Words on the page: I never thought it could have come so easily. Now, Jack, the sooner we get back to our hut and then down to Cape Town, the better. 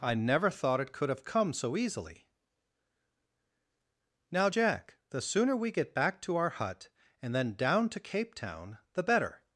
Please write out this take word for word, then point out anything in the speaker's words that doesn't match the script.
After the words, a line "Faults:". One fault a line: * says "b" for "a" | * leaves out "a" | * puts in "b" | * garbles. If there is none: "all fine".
I never thought it could have come so easily. Now, Jack, the sooner we get back to our hut and then down to Cape Town, the better.
Faults:
all fine